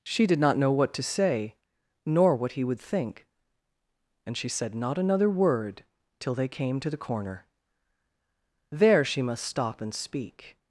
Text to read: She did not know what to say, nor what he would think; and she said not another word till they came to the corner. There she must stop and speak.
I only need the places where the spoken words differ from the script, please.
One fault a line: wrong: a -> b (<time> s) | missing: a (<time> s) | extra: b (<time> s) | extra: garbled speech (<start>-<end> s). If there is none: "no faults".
no faults